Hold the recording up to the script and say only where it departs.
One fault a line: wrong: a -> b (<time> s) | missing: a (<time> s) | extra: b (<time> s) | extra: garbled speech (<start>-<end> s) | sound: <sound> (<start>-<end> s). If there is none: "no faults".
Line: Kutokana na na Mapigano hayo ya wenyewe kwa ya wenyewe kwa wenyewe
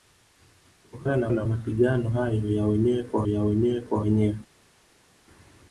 no faults